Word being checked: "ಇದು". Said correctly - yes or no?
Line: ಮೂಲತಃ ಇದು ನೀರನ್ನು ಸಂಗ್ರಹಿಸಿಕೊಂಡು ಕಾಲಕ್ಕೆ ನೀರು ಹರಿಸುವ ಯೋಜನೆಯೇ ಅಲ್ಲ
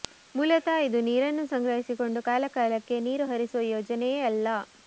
yes